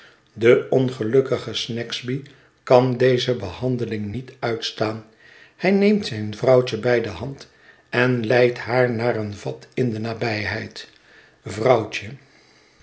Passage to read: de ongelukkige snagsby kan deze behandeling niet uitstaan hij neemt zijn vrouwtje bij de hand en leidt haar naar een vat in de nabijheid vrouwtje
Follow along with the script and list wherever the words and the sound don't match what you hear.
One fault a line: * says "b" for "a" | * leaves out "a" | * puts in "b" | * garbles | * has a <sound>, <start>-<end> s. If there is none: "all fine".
all fine